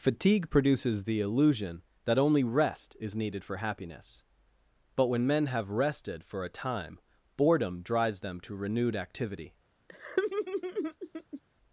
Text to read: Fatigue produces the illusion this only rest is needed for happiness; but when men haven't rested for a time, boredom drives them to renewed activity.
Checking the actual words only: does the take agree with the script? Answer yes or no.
no